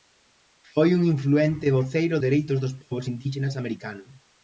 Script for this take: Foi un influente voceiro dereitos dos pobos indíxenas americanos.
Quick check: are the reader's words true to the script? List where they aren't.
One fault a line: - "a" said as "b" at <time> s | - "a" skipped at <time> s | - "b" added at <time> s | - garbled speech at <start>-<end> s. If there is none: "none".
none